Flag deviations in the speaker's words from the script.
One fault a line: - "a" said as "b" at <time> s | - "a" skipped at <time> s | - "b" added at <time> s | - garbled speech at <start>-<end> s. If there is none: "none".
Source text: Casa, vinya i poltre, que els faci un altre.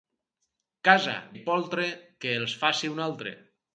- "vinya" skipped at 1.1 s